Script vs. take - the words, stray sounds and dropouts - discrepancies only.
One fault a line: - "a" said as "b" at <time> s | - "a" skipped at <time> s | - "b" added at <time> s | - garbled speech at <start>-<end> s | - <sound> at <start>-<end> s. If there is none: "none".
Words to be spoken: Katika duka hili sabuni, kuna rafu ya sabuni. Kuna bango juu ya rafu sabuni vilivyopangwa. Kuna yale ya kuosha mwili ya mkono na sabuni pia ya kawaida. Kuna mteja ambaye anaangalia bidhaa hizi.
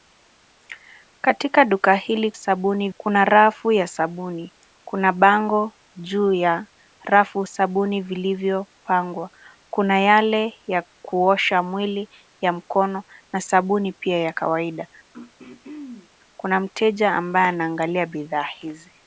- throat clearing at 15.1-16.1 s